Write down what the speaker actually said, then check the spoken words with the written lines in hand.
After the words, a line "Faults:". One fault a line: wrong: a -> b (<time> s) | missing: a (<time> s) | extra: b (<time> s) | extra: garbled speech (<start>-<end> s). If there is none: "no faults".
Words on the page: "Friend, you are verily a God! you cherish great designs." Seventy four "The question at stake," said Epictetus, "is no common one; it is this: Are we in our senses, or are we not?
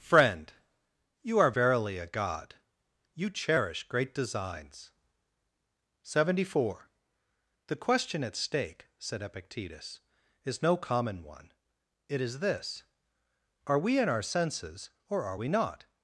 "Friend, you are verily a God! you cherish great designs." Seventy four "The question at stake," said Epictetus, "is no common one; it is this: Are we in our senses, or are we not?
Faults:
no faults